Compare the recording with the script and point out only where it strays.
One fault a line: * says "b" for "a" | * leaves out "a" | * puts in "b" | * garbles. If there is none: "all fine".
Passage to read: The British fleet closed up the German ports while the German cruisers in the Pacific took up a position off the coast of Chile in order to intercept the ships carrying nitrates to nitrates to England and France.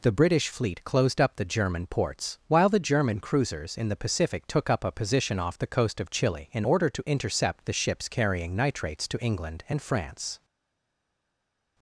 * leaves out "nitrates to"